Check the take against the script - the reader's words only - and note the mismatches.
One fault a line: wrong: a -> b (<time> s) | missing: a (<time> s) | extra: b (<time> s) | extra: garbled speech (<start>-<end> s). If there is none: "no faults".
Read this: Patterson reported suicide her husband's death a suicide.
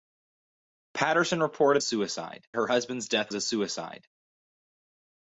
no faults